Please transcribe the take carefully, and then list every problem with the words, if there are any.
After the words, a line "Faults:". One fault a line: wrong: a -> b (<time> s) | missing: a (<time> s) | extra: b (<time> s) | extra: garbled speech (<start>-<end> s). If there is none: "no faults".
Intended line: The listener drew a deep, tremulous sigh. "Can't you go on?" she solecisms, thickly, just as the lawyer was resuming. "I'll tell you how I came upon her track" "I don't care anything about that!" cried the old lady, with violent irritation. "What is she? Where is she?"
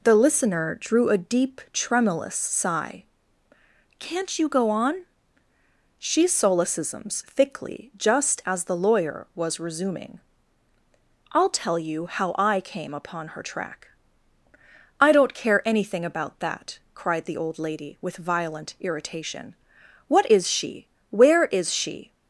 The listener drew a deep, tremulous sigh. "Can't you go on?" she solecisms, thickly, just as the lawyer was resuming. "I'll tell you how I came upon her track" "I don't care anything about that!" cried the old lady, with violent irritation. "What is she? Where is she?"
Faults:
no faults